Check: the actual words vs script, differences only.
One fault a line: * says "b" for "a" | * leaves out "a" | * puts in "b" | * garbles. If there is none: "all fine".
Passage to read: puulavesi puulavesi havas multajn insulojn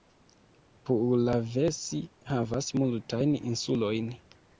* leaves out "puulavesi"